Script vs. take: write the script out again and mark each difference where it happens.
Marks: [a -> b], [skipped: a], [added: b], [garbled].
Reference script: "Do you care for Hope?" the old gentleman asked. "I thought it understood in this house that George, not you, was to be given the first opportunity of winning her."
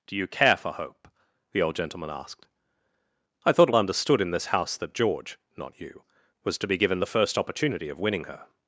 "Do you care for Hope?" the old gentleman asked. "I thought it understood in this house that George, not you, was to be given the first opportunity of winning her."